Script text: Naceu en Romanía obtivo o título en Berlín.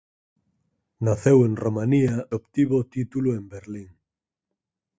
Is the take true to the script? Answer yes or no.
yes